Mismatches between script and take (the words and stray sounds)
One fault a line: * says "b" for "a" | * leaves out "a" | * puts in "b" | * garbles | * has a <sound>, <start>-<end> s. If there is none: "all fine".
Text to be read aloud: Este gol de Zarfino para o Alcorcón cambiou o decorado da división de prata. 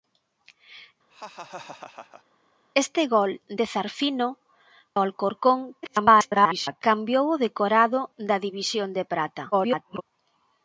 * has a laugh, 1.1-2.2 s
* leaves out "para"
* garbles
* garbles